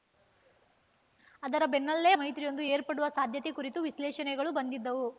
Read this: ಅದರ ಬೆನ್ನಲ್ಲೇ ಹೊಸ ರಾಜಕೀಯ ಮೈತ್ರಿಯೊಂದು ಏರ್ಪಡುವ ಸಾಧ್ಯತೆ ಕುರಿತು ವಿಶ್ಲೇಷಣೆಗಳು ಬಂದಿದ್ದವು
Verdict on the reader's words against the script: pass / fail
fail